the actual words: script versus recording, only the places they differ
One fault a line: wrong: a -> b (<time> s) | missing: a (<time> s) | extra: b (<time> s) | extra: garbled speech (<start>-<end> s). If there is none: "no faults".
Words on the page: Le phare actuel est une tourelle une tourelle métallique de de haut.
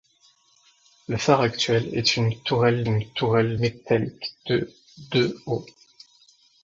no faults